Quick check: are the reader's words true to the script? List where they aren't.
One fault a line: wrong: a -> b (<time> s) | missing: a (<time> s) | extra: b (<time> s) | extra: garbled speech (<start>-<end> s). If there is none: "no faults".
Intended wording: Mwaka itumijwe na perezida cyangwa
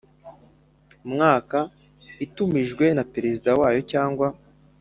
extra: wayo (3.6 s)